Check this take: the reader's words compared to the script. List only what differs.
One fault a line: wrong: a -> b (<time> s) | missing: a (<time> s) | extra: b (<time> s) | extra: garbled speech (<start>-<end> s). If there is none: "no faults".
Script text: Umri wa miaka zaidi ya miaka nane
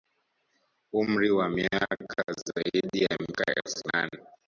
extra: elfu (3.6 s)